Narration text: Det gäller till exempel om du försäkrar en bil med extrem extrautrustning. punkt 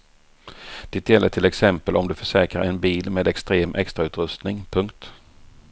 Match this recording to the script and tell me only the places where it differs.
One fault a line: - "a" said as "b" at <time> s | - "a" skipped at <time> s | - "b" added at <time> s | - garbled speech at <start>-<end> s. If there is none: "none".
none